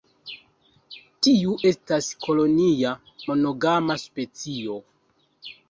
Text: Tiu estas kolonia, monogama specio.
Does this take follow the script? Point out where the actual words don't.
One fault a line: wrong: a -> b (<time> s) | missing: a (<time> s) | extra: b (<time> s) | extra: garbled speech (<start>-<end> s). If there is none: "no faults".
no faults